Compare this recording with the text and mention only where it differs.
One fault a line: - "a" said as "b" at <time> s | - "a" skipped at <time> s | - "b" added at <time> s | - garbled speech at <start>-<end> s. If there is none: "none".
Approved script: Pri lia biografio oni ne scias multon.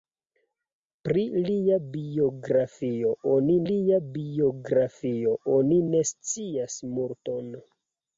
- "lia biografio oni" added at 3.7 s